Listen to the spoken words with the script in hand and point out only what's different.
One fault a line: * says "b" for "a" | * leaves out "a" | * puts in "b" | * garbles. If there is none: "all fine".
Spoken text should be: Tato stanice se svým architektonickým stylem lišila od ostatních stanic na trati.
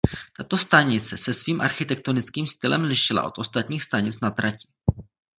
all fine